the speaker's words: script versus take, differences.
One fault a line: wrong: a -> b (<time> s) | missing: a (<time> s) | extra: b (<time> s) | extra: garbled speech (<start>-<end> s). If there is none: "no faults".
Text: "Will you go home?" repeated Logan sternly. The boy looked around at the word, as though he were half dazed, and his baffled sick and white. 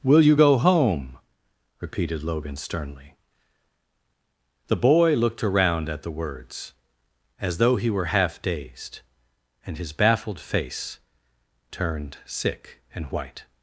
wrong: word -> words (6.1 s)
extra: face turned (10.4 s)